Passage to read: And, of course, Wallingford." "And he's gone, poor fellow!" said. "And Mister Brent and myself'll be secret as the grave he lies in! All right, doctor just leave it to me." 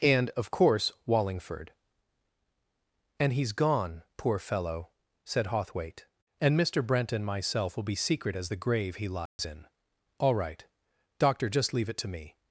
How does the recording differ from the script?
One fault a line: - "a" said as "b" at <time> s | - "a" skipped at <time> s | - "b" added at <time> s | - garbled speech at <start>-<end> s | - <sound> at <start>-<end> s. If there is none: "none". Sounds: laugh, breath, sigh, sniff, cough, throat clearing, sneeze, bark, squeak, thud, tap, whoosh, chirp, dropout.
- "Hawthwaite" added at 5.5 s
- dropout at 9.3-9.4 s